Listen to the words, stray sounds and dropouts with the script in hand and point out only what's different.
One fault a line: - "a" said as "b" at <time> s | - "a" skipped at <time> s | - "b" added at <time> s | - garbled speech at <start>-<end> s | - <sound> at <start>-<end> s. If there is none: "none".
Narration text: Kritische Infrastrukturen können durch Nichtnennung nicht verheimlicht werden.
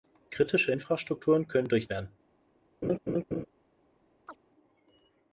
- "Nichtnennung nicht verheimlicht" skipped at 1.9 s
- laugh at 2.8-3.5 s
- chirp at 4.3-4.4 s